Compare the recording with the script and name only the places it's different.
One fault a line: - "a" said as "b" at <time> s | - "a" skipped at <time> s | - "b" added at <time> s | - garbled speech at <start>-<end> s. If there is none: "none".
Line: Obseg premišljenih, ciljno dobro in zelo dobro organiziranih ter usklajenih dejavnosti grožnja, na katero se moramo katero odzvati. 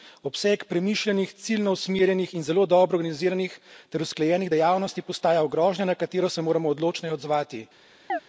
- "dobro" said as "usmerjenih" at 1.7 s
- "postaja" added at 5.0 s
- "katero" said as "odločneje" at 6.7 s